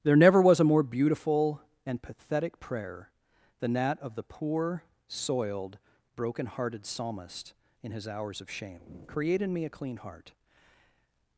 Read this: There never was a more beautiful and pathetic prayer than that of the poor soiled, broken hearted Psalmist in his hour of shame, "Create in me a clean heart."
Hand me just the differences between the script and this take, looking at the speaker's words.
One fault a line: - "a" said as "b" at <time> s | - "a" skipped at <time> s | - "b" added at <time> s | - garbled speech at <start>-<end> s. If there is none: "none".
- "hour" said as "hours" at 8.1 s